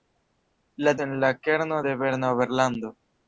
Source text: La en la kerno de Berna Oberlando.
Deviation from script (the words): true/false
false